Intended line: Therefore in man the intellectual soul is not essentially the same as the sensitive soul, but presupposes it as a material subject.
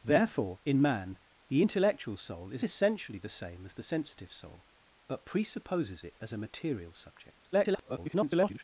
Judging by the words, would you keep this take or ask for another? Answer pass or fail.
fail